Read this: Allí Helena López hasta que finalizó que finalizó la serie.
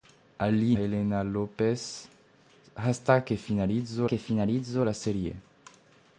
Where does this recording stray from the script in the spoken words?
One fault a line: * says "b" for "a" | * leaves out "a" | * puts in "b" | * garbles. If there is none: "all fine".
all fine